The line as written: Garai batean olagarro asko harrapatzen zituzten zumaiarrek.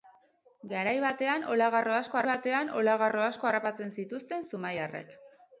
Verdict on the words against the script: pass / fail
fail